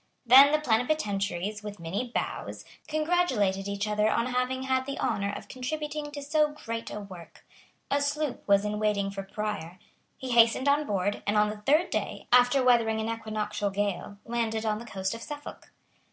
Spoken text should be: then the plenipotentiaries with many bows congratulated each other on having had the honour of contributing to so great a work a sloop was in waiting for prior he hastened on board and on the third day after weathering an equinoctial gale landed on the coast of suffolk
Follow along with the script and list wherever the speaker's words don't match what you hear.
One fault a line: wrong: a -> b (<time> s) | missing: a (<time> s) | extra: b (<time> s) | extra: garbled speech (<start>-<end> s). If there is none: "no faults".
no faults